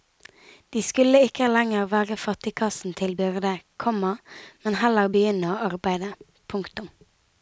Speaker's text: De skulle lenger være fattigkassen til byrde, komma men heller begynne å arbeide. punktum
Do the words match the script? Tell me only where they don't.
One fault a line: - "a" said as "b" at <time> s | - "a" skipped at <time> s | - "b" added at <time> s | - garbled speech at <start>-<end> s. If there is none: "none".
- "ikke" added at 1.2 s